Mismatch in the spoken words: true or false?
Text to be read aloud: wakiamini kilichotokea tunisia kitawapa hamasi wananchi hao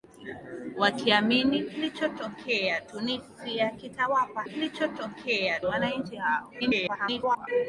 true